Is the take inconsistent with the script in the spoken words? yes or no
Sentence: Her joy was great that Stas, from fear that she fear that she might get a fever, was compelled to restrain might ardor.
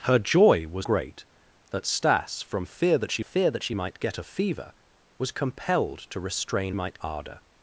no